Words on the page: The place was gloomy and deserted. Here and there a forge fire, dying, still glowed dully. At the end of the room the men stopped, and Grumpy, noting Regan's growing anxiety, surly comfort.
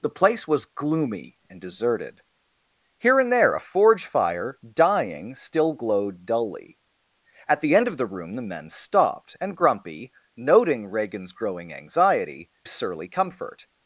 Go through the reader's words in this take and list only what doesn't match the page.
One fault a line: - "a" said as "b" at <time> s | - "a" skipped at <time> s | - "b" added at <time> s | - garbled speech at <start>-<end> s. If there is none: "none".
none